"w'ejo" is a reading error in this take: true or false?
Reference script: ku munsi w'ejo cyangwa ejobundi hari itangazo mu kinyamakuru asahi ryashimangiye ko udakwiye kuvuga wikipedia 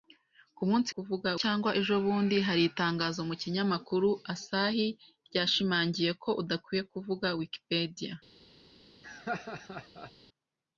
true